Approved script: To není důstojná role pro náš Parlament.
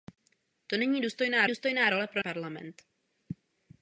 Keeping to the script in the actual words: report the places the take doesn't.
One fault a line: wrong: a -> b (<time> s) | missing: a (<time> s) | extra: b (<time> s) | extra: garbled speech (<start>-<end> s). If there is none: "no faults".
extra: důstojná (1.5 s)
missing: náš (2.2 s)